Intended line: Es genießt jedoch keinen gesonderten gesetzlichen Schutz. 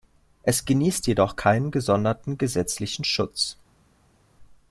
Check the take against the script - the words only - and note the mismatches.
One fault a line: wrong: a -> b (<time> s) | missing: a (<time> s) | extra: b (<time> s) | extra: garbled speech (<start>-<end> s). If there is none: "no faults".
no faults